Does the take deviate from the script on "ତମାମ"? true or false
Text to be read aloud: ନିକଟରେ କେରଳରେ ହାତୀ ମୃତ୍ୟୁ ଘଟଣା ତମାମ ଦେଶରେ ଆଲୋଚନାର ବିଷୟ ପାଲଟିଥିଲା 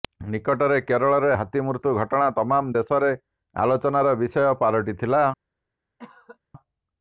false